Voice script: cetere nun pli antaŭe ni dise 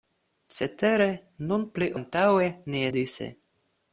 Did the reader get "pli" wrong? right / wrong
right